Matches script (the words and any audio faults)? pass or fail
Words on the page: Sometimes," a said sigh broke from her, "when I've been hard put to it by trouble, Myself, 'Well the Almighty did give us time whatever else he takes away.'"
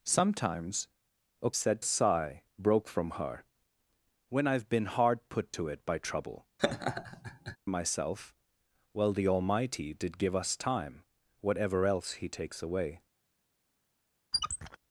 fail